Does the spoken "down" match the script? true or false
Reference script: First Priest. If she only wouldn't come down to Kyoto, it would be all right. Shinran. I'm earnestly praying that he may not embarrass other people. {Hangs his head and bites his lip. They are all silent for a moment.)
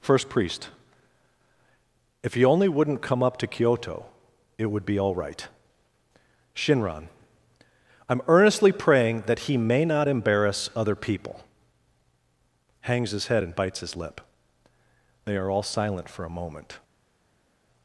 false